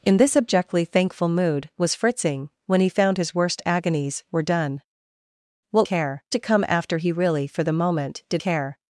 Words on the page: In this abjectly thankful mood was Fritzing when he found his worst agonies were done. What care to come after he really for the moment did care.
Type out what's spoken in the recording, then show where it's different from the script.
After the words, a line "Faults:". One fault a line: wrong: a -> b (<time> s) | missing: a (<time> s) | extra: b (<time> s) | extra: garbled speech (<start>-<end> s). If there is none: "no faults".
In this abjectly thankful mood was Fritzing when he found his worst agonies were done. What care to come after he really for the moment did care.
Faults:
no faults